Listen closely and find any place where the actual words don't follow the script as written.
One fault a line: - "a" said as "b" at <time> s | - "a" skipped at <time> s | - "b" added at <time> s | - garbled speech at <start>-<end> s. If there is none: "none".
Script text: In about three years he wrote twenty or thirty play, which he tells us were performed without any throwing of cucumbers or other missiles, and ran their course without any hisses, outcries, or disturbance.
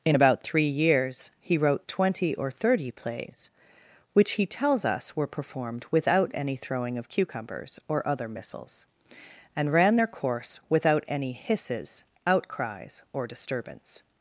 - "play" said as "plays" at 2.9 s